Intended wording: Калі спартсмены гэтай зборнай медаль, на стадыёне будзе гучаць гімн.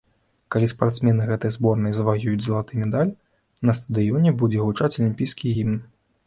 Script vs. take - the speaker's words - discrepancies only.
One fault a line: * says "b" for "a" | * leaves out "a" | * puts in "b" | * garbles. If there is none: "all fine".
* puts in "заваююць залаты"
* puts in "алімпійскі"